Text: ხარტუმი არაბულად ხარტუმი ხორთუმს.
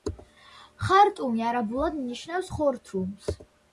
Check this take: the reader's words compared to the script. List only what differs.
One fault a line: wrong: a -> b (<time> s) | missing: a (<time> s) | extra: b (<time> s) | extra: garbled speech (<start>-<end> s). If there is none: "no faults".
wrong: ხარტუმი -> ნიშნავს (2.1 s)